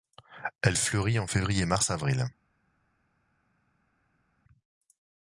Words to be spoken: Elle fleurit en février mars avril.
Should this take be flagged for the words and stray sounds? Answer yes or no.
no